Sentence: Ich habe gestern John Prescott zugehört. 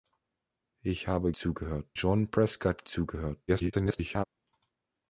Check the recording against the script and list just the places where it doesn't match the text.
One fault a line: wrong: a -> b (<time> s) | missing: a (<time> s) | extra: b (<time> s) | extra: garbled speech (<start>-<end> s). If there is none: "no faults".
wrong: gestern -> zugehört (1.4 s)
extra: garbled speech (3.5-4.3 s)